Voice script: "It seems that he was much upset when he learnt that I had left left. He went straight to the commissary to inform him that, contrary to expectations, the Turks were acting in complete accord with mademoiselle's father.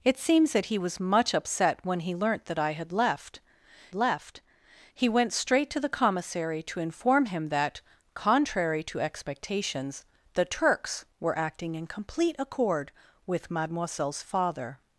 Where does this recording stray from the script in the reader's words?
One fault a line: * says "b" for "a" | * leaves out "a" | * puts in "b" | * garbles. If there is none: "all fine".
all fine